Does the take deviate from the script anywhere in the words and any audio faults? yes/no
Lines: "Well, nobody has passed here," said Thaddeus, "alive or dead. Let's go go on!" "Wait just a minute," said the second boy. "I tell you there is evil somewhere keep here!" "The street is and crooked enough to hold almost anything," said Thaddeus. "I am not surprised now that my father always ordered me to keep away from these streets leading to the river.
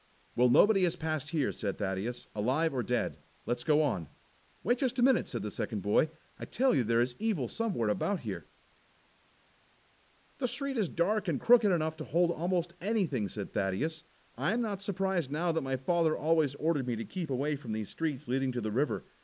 yes